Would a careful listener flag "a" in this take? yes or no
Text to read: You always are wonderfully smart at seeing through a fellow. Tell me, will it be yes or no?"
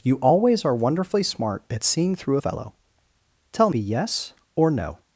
yes